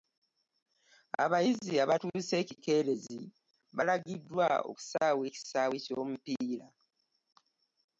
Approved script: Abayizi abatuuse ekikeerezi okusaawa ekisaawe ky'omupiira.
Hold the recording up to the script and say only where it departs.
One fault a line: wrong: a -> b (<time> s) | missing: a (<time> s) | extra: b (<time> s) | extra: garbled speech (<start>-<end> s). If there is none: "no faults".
extra: balagiddwa (3.8 s)